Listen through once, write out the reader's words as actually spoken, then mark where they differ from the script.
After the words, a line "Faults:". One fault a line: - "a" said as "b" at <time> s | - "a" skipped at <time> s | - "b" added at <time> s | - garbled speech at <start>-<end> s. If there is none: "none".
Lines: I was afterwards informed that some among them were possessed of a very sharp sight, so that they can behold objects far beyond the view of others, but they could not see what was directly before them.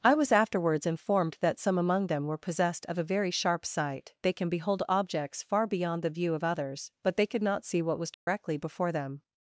I was afterwards informed that some among them were possessed of a very sharp sight, they can behold objects far beyond the view of others, but they could not see what was directly before them.
Faults:
- "so that" skipped at 4.2 s